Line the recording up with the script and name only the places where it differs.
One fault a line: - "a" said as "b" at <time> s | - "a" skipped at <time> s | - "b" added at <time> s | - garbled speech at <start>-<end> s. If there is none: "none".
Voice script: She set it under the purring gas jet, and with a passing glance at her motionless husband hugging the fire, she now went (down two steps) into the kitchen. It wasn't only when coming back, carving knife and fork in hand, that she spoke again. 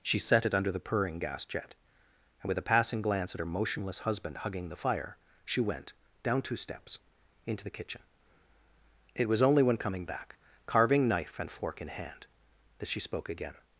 - "now" skipped at 5.6 s
- "wasn't" said as "was" at 9.3 s